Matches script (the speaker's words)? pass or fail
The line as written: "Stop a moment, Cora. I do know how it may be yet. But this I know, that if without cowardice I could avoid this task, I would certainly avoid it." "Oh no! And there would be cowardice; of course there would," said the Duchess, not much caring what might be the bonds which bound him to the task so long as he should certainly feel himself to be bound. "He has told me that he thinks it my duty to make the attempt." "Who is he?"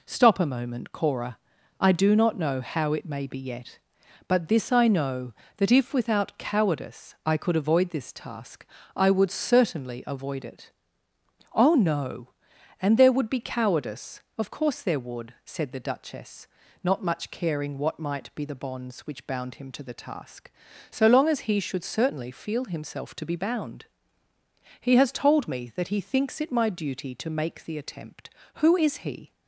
fail